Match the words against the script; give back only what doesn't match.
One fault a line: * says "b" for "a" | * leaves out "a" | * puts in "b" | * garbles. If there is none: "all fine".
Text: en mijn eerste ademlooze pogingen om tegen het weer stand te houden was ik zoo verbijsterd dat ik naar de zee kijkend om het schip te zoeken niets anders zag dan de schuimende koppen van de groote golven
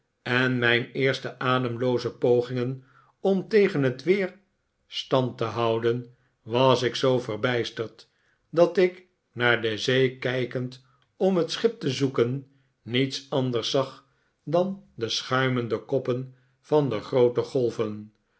all fine